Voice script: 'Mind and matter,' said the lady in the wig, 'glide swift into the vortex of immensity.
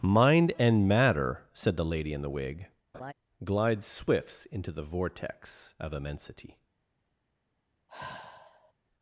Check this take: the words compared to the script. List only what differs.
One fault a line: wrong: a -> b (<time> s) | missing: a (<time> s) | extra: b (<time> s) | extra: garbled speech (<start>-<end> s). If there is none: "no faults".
wrong: swift -> swifts (3.8 s)